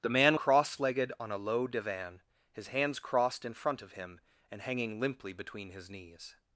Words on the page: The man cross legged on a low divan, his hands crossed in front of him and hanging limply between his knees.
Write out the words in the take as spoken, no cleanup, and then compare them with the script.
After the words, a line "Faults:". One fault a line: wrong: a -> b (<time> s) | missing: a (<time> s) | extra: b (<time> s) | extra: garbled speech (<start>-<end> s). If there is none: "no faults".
The man cross legged on a low divan, his hands crossed in front of him and hanging limply between his knees.
Faults:
no faults